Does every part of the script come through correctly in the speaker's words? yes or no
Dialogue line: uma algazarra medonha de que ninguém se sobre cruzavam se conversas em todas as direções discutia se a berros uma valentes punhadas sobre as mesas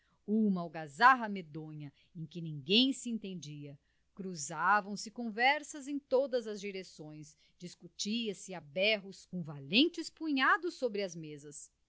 no